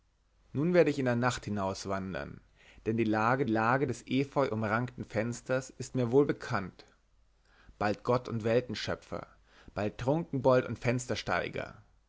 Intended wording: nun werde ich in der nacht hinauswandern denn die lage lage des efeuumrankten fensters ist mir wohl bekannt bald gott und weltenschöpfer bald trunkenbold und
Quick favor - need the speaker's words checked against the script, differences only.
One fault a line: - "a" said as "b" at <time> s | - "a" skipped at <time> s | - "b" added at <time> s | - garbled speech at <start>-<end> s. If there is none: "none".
none